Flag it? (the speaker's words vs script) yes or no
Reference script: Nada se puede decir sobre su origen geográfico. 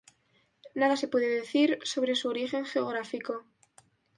no